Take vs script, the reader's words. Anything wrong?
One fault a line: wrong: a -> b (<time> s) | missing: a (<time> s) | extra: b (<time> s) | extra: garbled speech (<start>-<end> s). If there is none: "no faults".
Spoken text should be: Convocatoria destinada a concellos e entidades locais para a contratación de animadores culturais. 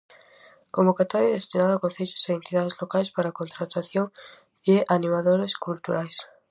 no faults